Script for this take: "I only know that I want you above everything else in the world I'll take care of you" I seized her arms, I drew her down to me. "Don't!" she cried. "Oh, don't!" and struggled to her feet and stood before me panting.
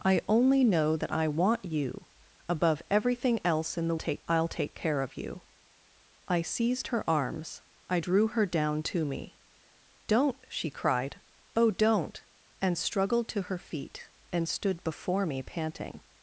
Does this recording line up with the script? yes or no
no